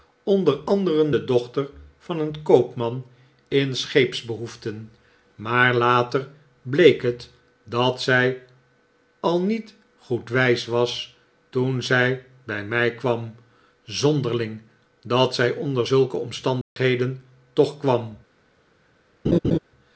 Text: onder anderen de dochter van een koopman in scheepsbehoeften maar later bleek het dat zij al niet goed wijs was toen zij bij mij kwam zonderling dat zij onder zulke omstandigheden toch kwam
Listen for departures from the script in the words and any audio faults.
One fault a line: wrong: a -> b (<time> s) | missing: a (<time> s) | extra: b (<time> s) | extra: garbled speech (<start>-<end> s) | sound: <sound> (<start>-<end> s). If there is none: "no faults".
sound: dropout (16.6-16.8 s)
sound: laugh (19.2-19.6 s)